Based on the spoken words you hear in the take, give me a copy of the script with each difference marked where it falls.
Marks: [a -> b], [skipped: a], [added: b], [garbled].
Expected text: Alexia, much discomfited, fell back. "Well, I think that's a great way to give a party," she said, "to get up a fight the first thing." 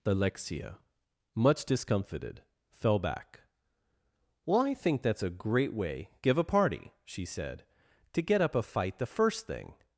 Alexia, much discomfited, fell back. "Well, I think that's a great way [skipped: to] give a party," she said, "to get up a fight the first thing."